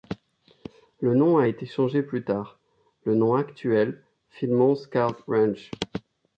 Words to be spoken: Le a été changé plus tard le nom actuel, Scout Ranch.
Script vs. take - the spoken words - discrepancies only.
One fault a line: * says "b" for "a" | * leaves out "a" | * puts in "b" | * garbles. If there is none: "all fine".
* puts in "nom"
* puts in "Philmont"